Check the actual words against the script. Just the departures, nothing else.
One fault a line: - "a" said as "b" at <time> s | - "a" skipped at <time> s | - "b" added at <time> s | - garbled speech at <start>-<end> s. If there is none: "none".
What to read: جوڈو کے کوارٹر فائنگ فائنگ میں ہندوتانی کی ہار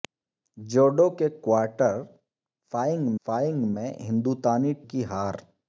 none